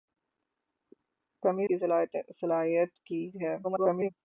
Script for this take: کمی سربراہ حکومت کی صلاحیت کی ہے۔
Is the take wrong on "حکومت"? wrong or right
wrong